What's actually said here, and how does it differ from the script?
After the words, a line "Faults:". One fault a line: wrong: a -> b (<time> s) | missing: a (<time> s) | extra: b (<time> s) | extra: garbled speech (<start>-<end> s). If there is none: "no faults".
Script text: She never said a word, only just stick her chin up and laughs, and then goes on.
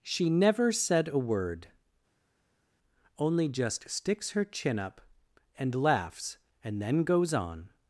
She never said a word, only just sticks her chin up and laughs, and then goes on.
Faults:
wrong: stick -> sticks (3.9 s)